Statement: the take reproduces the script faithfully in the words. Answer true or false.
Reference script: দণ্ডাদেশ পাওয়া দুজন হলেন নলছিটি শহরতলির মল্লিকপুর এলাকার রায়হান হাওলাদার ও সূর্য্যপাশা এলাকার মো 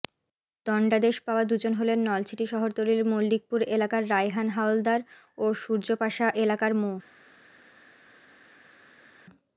true